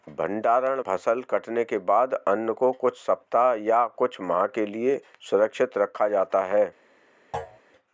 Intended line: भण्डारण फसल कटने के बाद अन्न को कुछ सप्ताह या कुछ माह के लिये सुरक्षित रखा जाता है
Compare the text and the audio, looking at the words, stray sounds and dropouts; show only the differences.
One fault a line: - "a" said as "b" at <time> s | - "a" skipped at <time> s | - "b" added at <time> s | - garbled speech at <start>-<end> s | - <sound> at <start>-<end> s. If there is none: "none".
- thud at 7.3-7.6 s